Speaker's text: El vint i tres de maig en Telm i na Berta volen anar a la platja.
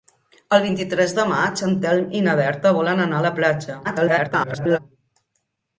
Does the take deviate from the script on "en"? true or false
false